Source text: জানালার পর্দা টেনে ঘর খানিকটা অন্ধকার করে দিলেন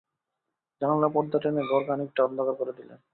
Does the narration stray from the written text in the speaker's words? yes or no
no